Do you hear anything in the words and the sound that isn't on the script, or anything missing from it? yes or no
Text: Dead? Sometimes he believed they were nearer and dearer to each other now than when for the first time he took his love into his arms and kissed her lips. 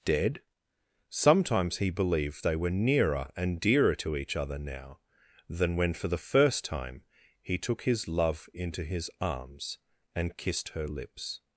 no